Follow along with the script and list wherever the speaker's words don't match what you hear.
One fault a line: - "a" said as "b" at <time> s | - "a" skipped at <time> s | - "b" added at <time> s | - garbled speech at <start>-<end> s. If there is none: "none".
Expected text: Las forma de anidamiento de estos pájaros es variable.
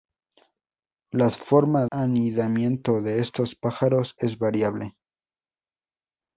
- "de" skipped at 1.9 s